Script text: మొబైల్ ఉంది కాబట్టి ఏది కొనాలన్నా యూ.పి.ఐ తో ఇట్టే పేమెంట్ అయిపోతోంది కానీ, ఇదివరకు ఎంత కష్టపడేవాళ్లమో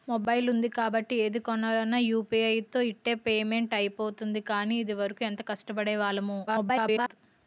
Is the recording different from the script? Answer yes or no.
yes